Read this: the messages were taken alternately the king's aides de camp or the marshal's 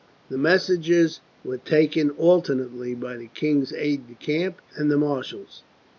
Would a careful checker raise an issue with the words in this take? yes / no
yes